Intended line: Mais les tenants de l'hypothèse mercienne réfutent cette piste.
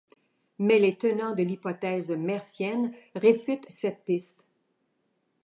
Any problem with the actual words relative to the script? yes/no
no